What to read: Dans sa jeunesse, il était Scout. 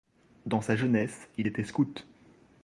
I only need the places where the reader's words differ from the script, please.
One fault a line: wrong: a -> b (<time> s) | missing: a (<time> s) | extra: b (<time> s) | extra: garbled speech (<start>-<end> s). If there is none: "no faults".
no faults